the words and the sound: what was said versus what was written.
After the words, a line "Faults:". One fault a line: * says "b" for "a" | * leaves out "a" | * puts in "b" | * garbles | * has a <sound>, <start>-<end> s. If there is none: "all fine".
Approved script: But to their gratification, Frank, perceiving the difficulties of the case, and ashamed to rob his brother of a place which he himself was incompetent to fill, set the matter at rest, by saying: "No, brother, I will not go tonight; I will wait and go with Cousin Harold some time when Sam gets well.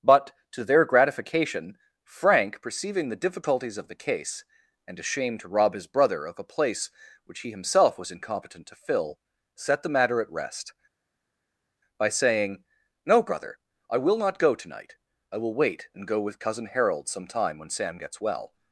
But to their gratification, Frank, perceiving the difficulties of the case, and ashamed to rob his brother of a place which he himself was incompetent to fill, set the matter at rest, by saying: "No, brother, I will not go tonight; I will wait and go with Cousin Harold some time when Sam gets well.
Faults:
all fine